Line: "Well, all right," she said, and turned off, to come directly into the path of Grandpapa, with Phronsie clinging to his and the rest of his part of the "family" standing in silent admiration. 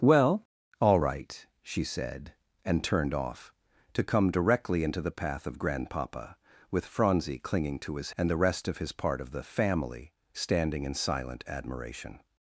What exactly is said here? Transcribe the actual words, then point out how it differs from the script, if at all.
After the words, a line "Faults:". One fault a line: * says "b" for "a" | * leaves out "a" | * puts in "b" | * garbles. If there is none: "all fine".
"Well, all right," she said, and turned off, to come directly into the path of Grandpapa, with Phronsie clinging to his and the rest of his part of the "family" standing in silent admiration.
Faults:
all fine